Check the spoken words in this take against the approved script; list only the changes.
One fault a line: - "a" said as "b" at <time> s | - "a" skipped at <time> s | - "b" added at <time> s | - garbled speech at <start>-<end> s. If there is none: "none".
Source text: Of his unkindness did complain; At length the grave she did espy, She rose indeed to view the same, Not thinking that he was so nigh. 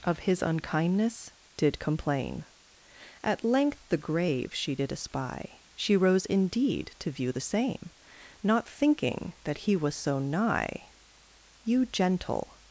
- "You gentle" added at 11.6 s